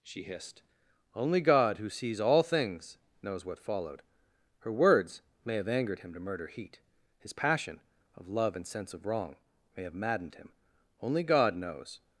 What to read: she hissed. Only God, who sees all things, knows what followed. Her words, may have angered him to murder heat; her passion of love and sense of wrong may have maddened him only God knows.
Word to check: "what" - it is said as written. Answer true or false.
true